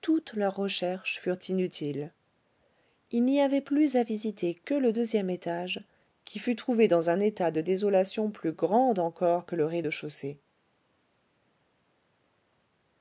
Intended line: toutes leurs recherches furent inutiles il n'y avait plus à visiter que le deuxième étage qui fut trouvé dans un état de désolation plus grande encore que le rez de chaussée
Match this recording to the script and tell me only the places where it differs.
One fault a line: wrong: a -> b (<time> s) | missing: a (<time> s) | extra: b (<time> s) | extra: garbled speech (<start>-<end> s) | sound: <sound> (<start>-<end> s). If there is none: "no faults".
no faults